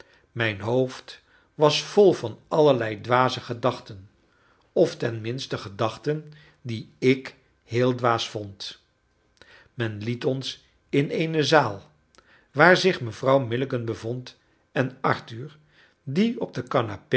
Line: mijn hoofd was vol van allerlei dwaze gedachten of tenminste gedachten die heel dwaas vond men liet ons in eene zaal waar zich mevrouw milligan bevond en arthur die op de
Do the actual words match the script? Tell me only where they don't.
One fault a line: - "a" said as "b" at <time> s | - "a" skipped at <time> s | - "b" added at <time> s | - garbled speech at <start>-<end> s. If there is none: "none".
- "ik" added at 7.0 s